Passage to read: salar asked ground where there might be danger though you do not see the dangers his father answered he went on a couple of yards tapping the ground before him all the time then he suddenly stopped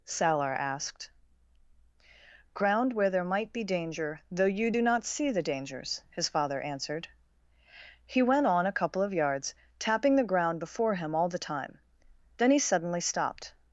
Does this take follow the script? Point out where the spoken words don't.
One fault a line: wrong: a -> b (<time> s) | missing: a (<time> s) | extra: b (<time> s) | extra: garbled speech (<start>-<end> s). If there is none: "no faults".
no faults